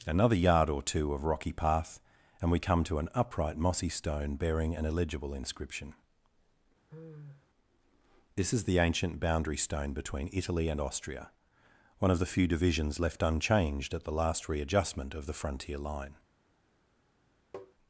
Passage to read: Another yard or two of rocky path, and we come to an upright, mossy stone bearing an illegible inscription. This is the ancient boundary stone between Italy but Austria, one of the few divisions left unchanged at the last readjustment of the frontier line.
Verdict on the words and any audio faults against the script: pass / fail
fail